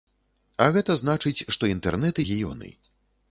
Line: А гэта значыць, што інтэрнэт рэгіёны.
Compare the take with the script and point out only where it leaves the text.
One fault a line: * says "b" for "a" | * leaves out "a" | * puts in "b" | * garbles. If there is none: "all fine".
all fine